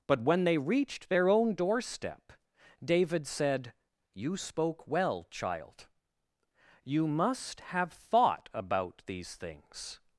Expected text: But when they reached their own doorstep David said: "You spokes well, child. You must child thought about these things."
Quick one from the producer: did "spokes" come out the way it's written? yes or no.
no